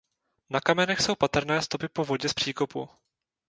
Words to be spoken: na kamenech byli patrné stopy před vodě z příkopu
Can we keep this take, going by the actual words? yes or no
no